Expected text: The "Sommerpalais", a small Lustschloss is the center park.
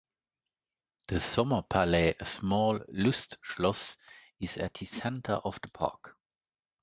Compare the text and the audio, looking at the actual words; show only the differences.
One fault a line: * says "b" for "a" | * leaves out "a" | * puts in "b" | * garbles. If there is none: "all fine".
* puts in "at"
* puts in "of the"